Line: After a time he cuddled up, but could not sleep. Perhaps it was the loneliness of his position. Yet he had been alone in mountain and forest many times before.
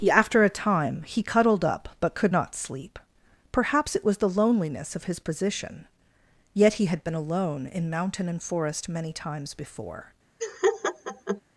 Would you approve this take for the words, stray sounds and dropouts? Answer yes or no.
no